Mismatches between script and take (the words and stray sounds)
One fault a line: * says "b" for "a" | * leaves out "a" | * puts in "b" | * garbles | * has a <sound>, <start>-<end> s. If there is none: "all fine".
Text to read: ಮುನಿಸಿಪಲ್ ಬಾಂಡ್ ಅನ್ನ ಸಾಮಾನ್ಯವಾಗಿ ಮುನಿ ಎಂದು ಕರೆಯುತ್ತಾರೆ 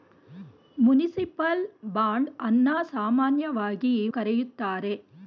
* leaves out "ಮುನಿ ಎಂದು"